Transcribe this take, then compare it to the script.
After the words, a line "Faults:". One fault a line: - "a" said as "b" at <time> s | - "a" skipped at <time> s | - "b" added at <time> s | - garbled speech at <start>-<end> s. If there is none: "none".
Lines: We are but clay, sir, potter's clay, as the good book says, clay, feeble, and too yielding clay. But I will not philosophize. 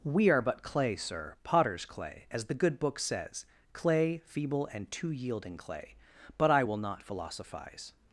We are but clay, sir, potter's clay, as the good book says, clay, feeble, and too yielding clay. But I will not philosophize.
Faults:
none